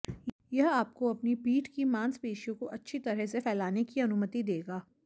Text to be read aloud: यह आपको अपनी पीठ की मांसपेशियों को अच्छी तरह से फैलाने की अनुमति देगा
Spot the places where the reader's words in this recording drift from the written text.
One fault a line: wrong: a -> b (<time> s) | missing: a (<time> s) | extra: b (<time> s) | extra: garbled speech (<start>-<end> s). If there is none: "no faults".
no faults